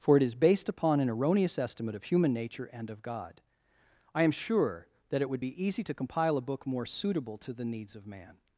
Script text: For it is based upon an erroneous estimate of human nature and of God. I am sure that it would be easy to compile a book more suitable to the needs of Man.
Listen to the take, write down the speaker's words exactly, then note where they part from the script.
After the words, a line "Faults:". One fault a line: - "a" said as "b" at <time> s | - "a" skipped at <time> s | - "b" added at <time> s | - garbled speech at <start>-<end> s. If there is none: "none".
For it is based upon an erroneous estimate of human nature and of God. I am sure that it would be easy to compile a book more suitable to the needs of Man.
Faults:
none